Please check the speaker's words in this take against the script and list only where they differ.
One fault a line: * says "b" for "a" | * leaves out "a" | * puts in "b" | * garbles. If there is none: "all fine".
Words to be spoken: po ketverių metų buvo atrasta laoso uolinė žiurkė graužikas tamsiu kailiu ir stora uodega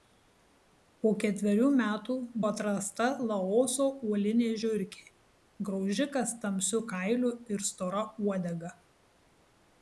* leaves out "buvo"